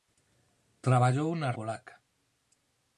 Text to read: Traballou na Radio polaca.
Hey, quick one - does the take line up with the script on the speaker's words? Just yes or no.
no